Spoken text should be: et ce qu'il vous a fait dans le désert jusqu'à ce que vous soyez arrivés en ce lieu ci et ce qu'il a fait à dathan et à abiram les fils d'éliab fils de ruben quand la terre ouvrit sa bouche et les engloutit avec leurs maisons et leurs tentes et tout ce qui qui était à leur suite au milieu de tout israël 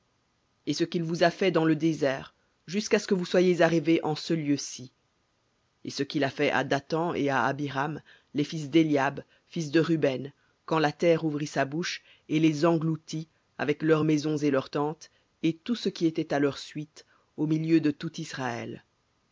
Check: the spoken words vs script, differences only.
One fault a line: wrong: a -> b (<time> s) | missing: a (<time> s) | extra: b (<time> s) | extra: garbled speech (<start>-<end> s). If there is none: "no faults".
missing: qui (16.0 s)